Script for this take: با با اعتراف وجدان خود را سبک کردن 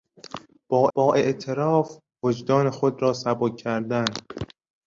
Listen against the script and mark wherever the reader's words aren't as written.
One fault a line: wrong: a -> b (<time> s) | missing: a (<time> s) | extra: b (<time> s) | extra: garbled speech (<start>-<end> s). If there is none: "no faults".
no faults